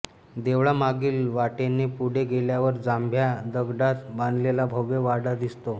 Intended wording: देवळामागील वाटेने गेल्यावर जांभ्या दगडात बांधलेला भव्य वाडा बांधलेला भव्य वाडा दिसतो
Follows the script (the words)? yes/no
no